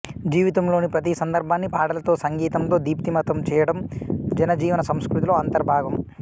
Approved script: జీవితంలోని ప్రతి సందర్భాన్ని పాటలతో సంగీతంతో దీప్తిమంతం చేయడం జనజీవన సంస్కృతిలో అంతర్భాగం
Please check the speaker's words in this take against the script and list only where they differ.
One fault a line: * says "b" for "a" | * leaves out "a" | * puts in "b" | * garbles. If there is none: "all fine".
all fine